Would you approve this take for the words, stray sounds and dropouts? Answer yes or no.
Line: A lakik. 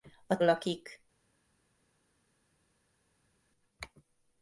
yes